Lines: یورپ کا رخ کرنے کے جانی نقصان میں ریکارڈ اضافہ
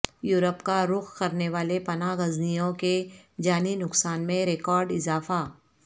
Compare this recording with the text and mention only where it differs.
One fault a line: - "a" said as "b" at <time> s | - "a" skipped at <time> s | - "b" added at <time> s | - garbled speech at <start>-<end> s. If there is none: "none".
- "والے پناہ گزینوں" added at 1.5 s